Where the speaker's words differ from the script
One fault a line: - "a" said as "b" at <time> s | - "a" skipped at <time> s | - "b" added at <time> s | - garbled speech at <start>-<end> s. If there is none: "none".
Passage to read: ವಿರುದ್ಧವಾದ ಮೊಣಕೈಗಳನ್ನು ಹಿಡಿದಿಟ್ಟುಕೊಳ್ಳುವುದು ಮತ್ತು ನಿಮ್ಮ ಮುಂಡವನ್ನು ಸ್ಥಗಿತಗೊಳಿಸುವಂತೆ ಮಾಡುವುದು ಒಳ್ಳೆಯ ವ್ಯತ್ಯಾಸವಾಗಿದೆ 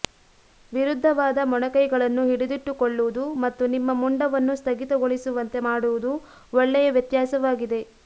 none